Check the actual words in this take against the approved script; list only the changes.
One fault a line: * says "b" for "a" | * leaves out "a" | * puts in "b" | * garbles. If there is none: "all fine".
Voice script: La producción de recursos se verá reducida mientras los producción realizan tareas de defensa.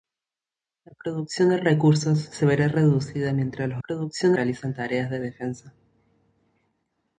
all fine